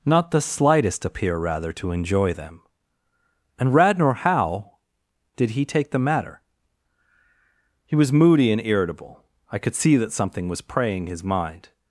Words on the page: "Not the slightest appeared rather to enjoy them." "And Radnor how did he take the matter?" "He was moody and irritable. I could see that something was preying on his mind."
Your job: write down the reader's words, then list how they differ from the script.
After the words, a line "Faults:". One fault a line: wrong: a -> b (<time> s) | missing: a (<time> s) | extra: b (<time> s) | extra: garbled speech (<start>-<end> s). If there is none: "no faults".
"Not the slightest appear rather to enjoy them." "And Radnor how did he take the matter?" "He was moody and irritable. I could see that something was preying his mind."
Faults:
wrong: appeared -> appear (1.1 s)
missing: on (11.1 s)